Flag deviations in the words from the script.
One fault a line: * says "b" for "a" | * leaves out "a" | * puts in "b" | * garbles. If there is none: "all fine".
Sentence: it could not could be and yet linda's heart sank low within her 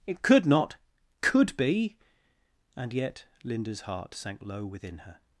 all fine